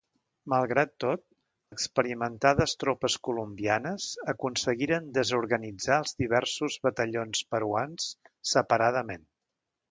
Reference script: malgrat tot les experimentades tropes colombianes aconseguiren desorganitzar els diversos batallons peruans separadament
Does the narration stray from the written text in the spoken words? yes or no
yes